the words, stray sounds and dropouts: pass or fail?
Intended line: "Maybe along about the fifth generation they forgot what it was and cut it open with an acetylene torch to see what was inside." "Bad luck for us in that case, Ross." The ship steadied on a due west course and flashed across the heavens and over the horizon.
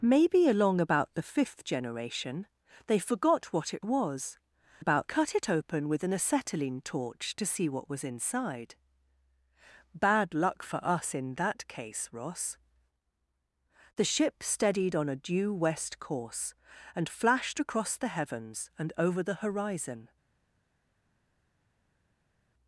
fail